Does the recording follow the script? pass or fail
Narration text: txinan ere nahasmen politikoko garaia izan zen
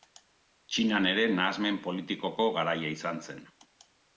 pass